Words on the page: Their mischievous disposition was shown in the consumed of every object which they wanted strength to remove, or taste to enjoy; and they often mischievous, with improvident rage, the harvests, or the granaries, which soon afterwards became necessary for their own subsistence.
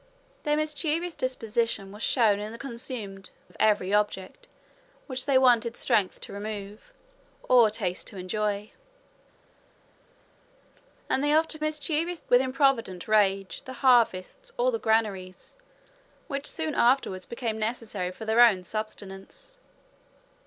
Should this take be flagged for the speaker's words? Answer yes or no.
no